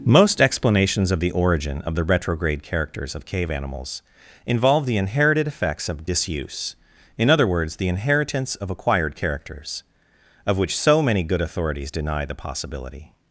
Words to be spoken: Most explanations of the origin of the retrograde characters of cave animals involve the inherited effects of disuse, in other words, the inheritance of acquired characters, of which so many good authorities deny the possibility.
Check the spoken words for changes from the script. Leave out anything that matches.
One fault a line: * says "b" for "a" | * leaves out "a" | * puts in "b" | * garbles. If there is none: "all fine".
all fine